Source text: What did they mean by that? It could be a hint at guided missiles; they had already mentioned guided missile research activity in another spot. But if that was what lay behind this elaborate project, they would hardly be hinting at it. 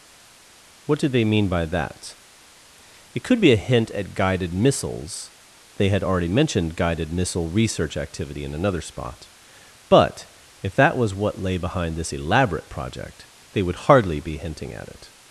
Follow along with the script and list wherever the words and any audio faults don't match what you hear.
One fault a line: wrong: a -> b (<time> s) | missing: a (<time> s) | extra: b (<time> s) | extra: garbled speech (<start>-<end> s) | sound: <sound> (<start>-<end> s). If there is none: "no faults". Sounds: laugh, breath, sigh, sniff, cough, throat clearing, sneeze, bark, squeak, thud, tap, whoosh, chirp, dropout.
no faults